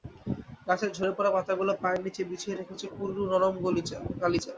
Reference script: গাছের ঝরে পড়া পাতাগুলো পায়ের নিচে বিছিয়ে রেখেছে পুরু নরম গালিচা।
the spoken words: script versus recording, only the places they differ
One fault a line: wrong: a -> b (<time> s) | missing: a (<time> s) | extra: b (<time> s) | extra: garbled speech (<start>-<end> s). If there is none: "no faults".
no faults